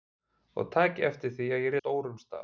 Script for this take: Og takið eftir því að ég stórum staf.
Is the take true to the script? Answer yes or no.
yes